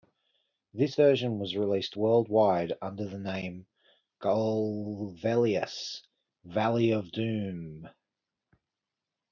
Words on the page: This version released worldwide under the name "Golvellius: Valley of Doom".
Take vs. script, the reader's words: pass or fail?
fail